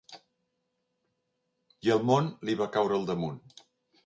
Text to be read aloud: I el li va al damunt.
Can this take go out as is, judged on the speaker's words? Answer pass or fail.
fail